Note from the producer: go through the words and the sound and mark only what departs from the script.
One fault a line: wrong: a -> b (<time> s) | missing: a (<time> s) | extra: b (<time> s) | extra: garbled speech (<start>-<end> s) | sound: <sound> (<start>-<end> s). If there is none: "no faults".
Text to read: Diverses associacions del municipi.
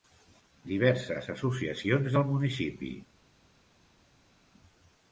no faults